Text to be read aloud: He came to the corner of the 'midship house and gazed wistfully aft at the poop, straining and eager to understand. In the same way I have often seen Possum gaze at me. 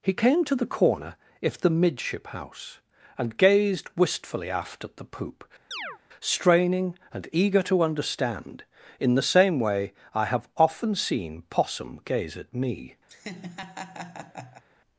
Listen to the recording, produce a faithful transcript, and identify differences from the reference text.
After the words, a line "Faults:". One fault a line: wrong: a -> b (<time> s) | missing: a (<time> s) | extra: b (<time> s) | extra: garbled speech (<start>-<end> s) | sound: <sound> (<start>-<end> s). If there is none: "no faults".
He came to the corner if the 'midship house and gazed wistfully aft at the poop, straining and eager to understand. In the same way I have often seen Possum gaze at me.
Faults:
wrong: of -> if (1.4 s)
sound: chirp (5.7-6.0 s)
sound: laugh (13.1-14.6 s)